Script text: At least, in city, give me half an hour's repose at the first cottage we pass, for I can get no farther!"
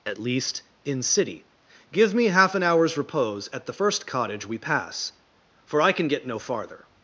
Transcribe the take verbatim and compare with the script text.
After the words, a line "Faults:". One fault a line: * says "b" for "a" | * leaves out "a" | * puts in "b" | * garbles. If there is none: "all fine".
At least, in city, give me half an hour's repose at the first cottage we pass, for I can get no farther!"
Faults:
all fine